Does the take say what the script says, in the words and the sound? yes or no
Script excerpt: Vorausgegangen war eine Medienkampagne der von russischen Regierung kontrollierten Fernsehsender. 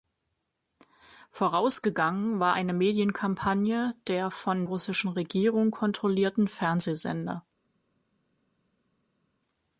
yes